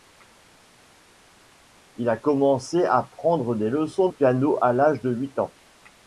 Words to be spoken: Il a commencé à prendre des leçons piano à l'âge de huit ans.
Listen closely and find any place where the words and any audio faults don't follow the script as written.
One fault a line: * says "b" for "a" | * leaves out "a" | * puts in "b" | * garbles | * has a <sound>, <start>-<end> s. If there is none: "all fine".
all fine